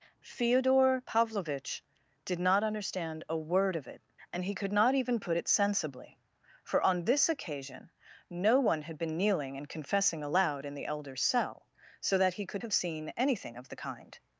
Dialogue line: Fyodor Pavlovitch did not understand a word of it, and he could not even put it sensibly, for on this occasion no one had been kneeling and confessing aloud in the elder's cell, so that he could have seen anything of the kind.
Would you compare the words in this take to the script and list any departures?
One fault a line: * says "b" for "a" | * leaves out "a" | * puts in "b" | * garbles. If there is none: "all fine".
all fine